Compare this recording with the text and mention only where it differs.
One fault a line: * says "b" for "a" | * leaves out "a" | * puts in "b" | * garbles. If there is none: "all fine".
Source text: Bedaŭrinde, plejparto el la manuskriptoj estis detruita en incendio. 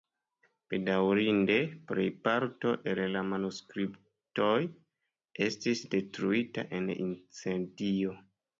all fine